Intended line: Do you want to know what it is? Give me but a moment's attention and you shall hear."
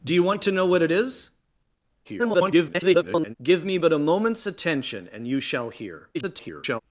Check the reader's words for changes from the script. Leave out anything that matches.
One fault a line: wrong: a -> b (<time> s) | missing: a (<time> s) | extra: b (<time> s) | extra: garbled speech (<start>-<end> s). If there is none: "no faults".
extra: garbled speech (2.0-3.3 s)
extra: garbled speech (6.1-6.8 s)